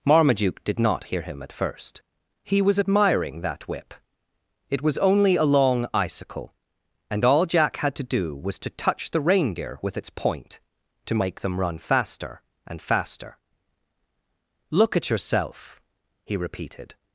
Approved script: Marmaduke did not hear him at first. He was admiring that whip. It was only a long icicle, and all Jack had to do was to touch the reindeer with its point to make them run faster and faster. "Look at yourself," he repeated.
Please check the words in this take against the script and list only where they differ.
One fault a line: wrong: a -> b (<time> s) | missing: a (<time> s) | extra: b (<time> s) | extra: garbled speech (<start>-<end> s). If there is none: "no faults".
no faults